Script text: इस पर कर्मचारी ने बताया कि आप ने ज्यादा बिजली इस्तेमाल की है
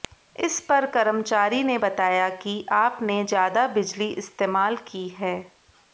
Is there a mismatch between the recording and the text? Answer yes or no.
no